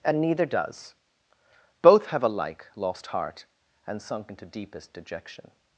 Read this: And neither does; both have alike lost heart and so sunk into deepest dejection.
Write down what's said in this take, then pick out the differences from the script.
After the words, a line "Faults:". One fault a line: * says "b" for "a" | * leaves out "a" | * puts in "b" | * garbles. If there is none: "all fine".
And neither does; both have alike lost heart and sunk into deepest dejection.
Faults:
* leaves out "so"